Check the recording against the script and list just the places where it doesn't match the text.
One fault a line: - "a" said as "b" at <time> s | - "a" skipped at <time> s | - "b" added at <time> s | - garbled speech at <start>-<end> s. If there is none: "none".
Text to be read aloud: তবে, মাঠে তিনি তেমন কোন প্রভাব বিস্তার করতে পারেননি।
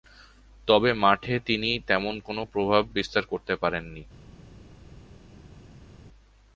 none